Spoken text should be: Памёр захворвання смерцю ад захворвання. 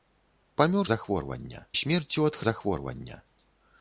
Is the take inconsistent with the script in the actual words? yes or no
no